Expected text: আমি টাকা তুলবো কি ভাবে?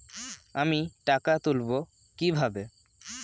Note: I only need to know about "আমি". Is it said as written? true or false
true